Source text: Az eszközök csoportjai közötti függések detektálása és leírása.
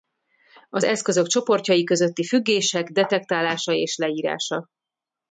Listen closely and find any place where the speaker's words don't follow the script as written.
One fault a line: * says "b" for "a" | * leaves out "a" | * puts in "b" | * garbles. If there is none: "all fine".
all fine